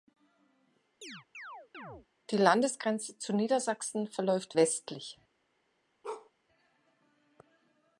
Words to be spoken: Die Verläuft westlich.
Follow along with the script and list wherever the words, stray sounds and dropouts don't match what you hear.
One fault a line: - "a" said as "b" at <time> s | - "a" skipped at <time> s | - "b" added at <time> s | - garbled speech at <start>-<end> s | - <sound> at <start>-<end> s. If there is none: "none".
- chirp at 1.0-2.1 s
- "Landesgrenze zu Niedersachsen" added at 2.4 s
- bark at 6.0-6.3 s